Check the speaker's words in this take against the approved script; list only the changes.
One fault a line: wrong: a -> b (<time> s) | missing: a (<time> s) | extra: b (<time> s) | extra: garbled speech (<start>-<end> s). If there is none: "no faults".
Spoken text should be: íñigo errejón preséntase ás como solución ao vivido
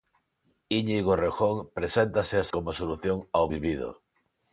no faults